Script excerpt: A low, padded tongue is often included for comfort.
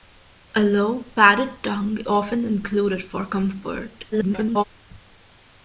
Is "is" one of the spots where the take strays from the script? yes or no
yes